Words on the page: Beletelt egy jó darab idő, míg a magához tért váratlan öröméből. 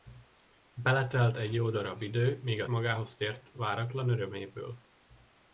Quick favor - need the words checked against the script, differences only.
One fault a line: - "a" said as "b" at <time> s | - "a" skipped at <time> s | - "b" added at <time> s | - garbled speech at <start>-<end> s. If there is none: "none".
none